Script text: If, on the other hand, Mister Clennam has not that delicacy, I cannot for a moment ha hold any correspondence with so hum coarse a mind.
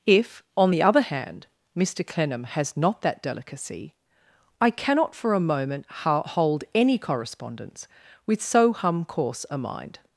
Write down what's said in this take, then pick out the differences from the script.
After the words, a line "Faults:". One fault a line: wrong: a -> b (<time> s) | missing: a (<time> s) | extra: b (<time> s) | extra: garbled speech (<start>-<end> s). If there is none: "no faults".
If, on the other hand, Mister Clennam has not that delicacy, I cannot for a moment ha hold any correspondence with so hum coarse a mind.
Faults:
no faults